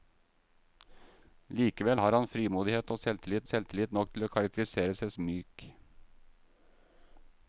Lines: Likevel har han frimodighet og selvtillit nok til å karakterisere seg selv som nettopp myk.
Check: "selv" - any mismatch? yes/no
yes